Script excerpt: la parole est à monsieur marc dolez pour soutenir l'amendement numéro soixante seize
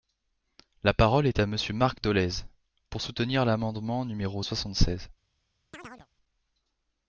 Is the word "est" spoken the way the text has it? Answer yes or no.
yes